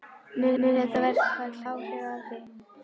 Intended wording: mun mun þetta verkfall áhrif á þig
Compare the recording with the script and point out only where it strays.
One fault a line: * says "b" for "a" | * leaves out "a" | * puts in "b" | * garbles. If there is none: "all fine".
all fine